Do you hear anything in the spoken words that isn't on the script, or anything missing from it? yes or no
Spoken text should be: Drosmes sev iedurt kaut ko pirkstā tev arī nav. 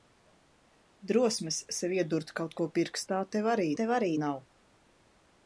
yes